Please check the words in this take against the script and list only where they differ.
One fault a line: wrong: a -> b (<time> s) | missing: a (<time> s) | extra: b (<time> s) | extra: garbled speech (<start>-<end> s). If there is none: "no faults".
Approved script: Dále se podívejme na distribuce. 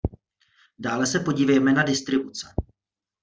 no faults